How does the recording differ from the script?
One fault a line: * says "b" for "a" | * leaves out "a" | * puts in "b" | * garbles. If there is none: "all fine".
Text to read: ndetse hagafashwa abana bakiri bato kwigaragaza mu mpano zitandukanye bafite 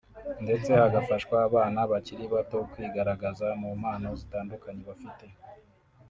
all fine